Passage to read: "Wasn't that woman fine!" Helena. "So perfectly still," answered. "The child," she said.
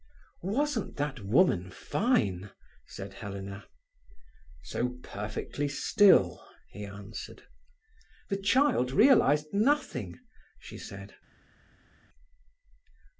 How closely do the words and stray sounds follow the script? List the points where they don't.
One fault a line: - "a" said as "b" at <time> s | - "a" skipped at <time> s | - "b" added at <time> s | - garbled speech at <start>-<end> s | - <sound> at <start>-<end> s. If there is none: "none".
- "said" added at 2.9 s
- "he" added at 6.7 s
- "realized nothing" added at 8.9 s